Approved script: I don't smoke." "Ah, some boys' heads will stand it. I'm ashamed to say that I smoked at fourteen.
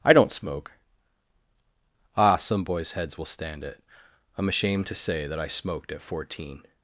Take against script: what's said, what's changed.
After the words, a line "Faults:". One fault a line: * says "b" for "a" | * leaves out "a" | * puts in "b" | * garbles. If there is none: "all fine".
I don't smoke." "Ah, some boys' heads will stand it. I'm ashamed to say that I smoked at fourteen.
Faults:
all fine